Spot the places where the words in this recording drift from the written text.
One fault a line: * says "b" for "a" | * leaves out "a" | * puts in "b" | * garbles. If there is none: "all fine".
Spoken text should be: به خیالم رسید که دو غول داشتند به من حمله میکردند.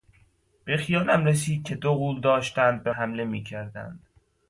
* leaves out "من"